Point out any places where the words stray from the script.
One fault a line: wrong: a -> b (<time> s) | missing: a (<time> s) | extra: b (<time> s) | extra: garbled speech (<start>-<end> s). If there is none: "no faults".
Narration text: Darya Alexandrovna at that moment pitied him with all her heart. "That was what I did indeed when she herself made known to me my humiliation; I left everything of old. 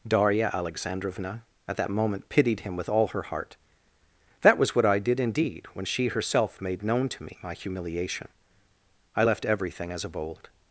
extra: as (9.9 s)